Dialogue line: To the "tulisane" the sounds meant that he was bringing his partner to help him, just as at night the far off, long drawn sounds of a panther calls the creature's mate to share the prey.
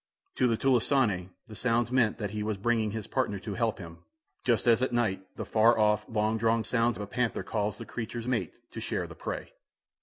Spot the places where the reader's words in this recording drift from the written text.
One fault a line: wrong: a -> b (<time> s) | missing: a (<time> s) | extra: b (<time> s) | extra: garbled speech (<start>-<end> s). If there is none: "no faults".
no faults